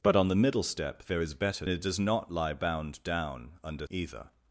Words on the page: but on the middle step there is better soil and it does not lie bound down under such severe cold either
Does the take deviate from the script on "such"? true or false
true